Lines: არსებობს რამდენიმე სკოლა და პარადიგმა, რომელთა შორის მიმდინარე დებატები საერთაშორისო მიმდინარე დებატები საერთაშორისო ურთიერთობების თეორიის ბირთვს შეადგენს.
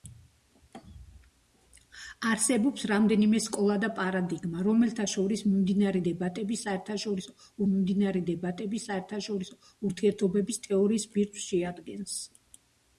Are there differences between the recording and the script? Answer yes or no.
no